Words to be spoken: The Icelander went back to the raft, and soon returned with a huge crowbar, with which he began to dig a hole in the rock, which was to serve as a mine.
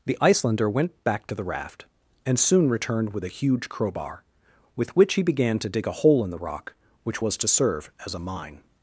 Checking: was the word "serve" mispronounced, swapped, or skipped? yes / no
no